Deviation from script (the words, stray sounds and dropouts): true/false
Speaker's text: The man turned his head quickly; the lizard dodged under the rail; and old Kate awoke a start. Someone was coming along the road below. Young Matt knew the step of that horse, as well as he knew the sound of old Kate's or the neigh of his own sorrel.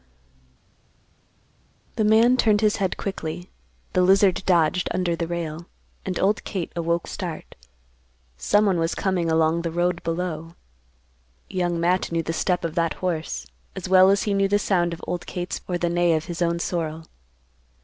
false